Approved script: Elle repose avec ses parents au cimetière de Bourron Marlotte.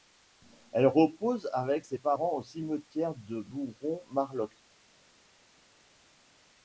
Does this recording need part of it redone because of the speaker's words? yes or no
no